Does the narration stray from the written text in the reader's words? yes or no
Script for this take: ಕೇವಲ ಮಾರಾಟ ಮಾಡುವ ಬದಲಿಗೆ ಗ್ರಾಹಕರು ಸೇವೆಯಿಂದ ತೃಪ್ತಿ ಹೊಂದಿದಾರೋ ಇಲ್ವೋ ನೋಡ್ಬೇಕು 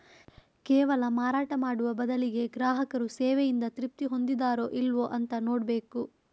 yes